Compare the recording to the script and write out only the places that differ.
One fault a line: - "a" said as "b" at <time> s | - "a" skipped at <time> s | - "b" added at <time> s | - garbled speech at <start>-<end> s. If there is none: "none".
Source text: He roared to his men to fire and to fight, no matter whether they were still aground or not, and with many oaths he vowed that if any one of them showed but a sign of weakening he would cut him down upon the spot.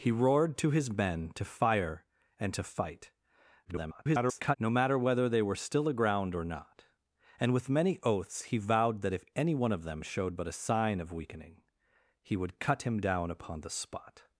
- garbled speech at 3.6-4.6 s